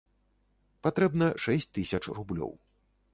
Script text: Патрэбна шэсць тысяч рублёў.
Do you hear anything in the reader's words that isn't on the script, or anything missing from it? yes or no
no